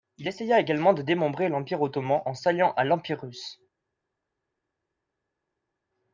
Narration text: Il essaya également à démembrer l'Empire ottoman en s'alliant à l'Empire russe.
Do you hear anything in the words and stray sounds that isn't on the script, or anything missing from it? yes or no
yes